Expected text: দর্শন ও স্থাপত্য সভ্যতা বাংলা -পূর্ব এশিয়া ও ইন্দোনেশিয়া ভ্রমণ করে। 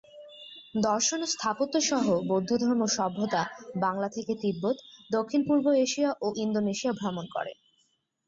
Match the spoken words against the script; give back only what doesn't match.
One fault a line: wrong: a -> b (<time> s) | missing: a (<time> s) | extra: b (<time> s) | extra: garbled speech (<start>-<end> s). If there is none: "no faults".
extra: সহ বৌদ্ধধর্ম (1.9 s)
extra: থেকে তিব্বত দক্ষিণ (4.2 s)